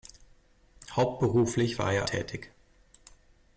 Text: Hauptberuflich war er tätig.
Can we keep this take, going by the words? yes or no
yes